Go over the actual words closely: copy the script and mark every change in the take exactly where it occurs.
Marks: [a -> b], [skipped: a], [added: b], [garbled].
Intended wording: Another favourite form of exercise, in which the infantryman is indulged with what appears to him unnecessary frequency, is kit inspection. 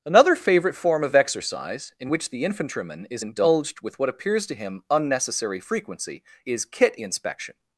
Another favourite form of exercise, in which the infantryman is indulged with what appears to him unnecessary frequency, is kit inspection.